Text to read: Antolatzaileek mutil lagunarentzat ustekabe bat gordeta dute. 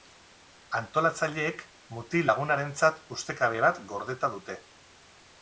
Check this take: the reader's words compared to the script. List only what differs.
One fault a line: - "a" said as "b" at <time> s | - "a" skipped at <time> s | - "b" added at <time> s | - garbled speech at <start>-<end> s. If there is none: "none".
none